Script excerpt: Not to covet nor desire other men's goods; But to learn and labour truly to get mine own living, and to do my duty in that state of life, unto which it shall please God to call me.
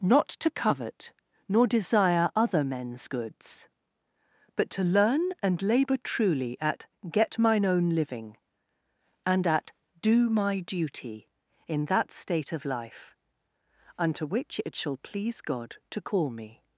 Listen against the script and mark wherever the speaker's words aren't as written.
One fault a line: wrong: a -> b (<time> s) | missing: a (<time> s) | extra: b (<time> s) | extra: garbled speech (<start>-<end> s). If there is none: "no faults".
wrong: to -> at (6.6 s)
wrong: to -> at (9.5 s)